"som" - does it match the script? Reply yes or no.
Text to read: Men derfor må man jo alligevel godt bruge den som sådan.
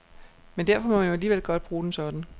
no